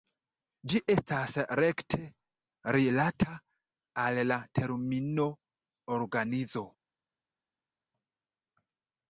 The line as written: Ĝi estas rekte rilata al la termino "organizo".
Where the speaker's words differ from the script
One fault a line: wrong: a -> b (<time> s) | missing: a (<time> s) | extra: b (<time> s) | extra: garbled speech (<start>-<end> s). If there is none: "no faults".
no faults